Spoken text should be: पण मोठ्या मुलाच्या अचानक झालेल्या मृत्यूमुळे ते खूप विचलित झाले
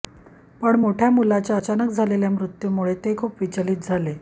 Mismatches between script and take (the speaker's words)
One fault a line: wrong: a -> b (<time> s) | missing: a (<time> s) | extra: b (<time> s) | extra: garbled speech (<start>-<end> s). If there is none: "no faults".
no faults